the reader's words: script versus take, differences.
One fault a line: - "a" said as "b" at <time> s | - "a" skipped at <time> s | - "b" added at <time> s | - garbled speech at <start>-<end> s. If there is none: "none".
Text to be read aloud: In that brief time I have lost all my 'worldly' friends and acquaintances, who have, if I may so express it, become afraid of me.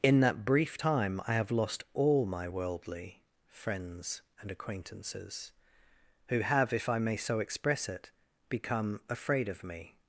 none